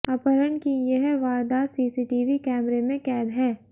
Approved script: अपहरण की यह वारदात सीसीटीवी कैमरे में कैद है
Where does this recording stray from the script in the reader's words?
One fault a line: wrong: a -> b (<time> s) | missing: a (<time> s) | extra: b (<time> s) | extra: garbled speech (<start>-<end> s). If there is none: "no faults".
no faults